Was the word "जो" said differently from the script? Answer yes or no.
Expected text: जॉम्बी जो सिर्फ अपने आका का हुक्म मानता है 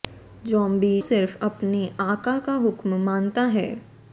yes